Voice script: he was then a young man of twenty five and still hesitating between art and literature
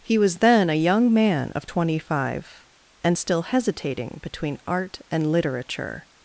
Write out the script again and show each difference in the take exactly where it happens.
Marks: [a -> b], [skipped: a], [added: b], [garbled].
he was then a young man of twenty five and still hesitating between art and literature